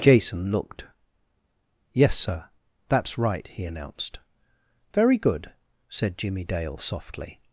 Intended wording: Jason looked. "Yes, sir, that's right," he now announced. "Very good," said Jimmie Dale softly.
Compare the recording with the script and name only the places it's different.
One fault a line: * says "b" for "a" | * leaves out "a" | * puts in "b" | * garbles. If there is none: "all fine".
* leaves out "now"